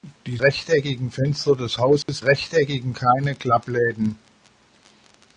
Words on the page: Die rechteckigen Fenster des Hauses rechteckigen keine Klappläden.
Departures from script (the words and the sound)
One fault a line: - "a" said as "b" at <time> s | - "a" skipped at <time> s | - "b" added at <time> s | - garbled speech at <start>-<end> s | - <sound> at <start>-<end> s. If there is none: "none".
- dropout at 2.0-2.1 s